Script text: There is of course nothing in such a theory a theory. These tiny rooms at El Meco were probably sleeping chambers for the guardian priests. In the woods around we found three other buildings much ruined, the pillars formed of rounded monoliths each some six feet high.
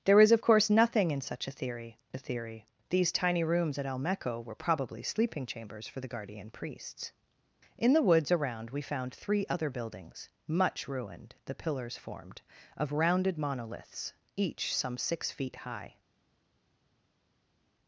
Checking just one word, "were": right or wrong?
right